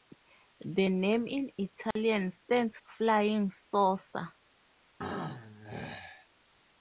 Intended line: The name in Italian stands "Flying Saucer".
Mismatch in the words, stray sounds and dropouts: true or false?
true